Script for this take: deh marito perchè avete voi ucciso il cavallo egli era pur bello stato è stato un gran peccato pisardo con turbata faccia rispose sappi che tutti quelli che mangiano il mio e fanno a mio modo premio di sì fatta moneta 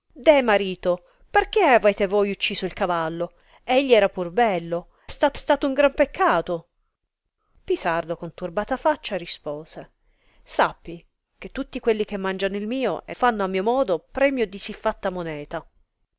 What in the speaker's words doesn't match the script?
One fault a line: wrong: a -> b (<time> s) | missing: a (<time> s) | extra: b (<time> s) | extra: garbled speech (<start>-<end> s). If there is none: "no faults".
no faults